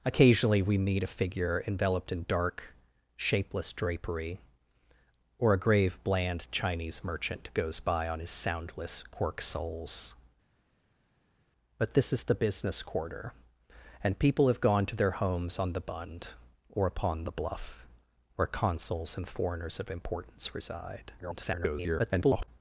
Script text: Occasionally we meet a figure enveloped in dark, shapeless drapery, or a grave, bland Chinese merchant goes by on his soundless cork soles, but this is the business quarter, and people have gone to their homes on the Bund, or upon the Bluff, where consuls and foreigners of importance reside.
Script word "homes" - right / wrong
right